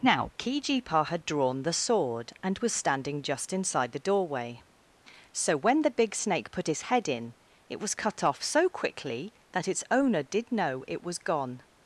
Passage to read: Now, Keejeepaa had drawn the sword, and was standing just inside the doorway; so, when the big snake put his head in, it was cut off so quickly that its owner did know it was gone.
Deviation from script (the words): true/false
false